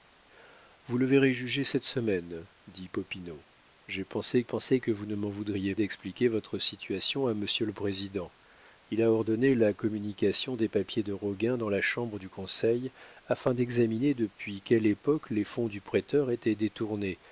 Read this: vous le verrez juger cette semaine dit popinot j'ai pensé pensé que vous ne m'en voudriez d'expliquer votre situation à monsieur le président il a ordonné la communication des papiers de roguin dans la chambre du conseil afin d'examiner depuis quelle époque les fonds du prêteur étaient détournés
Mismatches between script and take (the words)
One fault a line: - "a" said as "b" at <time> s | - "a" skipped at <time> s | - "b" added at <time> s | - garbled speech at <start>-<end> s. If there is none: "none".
none